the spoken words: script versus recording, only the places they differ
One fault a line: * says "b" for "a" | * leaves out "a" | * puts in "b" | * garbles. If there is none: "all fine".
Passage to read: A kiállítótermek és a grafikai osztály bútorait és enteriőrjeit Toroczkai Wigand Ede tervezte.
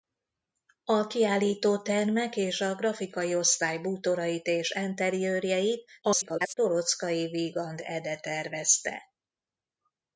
* garbles